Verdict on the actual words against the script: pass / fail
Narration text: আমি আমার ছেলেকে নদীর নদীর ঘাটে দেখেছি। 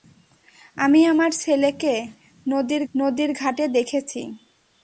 pass